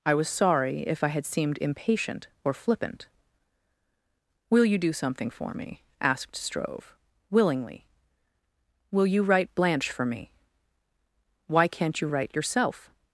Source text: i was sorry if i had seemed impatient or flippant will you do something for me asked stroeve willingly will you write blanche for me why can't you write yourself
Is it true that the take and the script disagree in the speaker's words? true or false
false